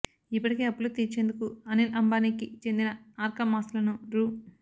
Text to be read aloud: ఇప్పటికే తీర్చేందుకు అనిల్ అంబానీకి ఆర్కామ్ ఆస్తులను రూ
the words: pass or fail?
fail